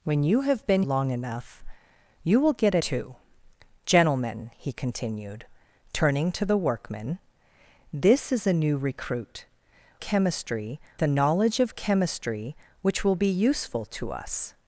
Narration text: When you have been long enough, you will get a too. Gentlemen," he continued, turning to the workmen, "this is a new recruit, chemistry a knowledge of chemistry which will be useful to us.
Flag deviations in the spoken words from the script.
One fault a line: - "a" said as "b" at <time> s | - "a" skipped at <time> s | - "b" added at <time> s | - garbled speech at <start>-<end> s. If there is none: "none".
none